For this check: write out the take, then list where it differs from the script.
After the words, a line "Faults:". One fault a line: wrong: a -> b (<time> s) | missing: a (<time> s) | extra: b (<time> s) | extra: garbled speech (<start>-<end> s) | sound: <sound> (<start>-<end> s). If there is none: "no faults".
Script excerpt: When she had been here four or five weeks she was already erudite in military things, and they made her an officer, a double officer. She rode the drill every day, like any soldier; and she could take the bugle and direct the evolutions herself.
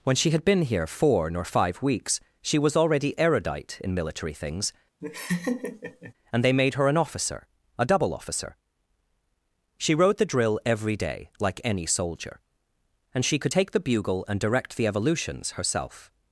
When she had been here four nor five weeks she was already erudite in military things, and they made her an officer, a double officer. She rode the drill every day, like any soldier; and she could take the bugle and direct the evolutions herself.
Faults:
wrong: or -> nor (1.3 s)
sound: laugh (5.0-6.1 s)